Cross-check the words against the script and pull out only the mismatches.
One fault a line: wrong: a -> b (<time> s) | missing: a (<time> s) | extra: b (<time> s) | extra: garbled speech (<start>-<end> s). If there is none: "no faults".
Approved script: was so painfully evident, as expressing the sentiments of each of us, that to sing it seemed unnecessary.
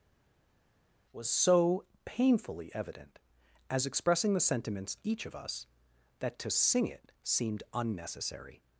missing: of (5.0 s)